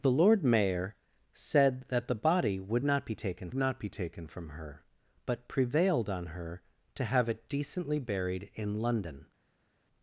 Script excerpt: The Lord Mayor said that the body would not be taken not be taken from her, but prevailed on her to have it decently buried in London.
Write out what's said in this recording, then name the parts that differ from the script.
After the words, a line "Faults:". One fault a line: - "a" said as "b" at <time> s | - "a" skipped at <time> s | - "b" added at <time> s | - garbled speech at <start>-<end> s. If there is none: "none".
The Lord Mayor said that the body would not be taken not be taken from her, but prevailed on her to have it decently buried in London.
Faults:
none